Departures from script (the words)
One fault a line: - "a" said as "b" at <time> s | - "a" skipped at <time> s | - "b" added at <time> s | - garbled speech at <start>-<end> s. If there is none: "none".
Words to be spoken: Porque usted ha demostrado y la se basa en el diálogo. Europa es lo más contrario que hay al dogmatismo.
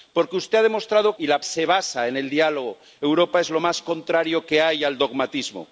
none